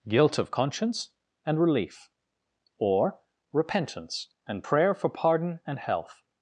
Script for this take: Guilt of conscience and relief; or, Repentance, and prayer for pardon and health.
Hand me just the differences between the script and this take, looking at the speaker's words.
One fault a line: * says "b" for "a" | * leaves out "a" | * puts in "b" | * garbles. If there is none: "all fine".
all fine